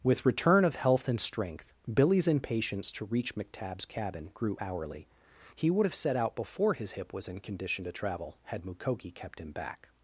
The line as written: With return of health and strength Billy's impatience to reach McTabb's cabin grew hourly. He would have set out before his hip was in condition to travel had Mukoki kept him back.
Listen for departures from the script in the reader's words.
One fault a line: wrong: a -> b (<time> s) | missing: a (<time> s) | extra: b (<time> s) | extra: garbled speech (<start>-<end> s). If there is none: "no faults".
no faults